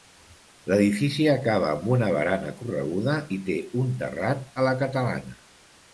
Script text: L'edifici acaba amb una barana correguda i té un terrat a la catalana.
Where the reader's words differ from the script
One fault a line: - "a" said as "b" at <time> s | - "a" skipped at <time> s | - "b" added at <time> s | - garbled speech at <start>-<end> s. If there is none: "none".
none